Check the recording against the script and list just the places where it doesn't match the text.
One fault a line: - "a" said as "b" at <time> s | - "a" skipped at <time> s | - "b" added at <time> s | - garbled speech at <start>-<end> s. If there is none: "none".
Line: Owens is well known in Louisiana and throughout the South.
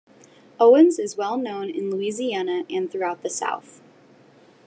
none